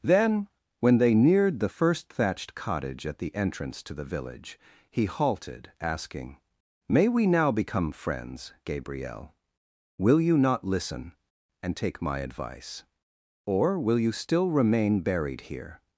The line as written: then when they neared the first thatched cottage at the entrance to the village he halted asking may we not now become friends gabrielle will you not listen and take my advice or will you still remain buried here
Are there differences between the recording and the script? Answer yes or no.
yes